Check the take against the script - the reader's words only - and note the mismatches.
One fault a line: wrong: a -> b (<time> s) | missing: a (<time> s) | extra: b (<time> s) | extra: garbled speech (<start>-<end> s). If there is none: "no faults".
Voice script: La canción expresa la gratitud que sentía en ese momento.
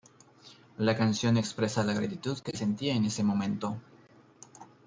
no faults